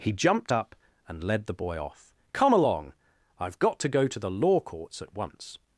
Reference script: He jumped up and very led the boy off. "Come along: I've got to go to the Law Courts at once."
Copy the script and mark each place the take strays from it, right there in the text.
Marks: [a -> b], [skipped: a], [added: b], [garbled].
He jumped up and [skipped: very] led the boy off. "Come along: I've got to go to the Law Courts at once."